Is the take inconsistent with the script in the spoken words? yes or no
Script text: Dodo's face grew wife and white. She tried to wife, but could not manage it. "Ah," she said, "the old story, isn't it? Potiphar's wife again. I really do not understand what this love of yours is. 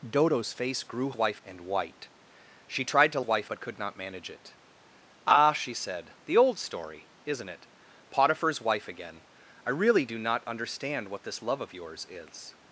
no